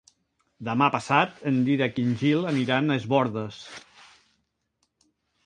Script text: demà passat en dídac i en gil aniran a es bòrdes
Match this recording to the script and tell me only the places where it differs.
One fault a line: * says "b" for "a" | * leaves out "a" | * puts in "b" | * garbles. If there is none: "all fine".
all fine